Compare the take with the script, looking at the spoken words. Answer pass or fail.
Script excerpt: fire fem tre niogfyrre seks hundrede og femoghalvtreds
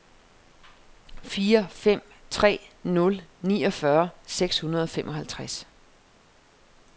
fail